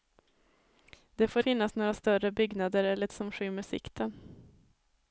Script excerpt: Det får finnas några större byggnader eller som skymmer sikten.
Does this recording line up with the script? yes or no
yes